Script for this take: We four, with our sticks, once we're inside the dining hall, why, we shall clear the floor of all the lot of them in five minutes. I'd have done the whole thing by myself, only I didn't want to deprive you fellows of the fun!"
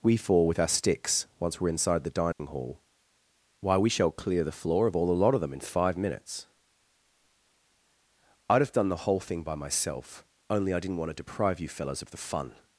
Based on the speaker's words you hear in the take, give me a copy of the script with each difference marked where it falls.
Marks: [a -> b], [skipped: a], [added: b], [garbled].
We four, with our sticks, once we're inside the dining hall, why, we shall clear the floor of all the lot of them in five minutes. I'd have done the whole thing by myself, only I didn't want to deprive you fellows of the fun!"